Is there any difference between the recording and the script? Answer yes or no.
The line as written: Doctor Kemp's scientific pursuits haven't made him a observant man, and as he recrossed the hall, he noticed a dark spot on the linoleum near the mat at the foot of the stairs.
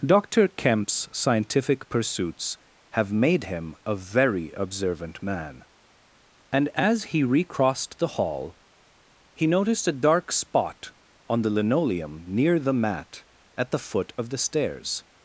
yes